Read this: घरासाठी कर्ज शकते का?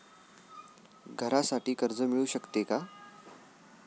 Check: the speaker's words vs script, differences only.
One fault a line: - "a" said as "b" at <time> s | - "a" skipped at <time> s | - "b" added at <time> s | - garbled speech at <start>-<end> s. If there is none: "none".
- "मिळू" added at 2.0 s